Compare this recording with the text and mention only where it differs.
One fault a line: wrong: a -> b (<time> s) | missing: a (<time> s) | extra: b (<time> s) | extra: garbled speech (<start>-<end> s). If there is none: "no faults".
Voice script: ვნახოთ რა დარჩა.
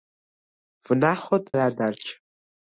no faults